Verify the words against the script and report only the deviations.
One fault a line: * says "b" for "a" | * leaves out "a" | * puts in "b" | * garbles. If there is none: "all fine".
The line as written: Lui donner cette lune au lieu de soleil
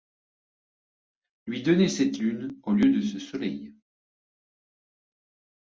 * puts in "ce"